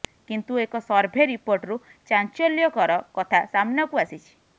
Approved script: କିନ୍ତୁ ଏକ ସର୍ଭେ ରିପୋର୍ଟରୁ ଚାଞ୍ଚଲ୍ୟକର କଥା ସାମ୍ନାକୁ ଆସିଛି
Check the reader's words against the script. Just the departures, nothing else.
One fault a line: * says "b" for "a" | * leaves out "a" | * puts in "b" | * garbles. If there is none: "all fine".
all fine